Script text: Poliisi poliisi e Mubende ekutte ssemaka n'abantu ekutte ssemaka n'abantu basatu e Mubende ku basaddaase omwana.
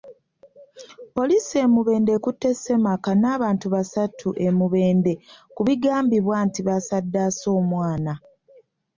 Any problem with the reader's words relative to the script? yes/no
yes